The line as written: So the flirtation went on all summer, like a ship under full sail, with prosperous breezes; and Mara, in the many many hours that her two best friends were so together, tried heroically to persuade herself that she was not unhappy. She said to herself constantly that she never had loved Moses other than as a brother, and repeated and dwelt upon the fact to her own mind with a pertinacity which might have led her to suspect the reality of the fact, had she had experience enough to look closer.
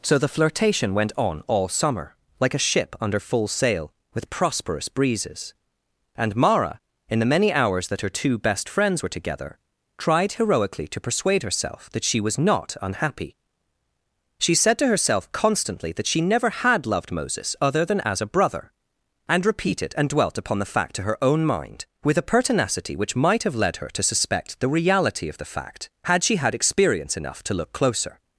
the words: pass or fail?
fail